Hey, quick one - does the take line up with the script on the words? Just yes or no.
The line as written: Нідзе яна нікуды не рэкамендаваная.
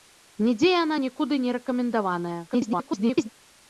no